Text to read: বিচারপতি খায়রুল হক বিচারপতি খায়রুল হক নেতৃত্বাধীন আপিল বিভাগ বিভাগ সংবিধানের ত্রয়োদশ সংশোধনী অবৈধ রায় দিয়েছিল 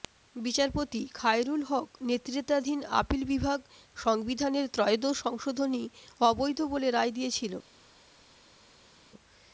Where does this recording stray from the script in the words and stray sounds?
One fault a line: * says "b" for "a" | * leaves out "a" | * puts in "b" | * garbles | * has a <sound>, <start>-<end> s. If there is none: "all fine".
* leaves out "বিচারপতি খায়রুল হক"
* leaves out "বিভাগ"
* puts in "বলে"